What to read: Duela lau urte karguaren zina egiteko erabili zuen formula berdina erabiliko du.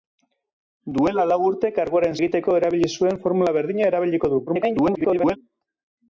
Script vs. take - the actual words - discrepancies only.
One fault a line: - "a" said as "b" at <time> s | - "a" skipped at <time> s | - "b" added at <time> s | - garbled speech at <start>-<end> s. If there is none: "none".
- "zina" skipped at 2.2 s
- garbled speech at 4.5-5.4 s